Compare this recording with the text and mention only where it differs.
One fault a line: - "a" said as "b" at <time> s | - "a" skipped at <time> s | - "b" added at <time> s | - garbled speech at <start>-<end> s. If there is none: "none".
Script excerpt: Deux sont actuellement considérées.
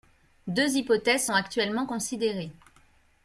- "hypothèses" added at 0.8 s